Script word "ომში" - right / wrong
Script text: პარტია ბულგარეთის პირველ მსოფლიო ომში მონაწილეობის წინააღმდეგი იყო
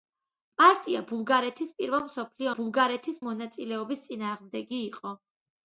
wrong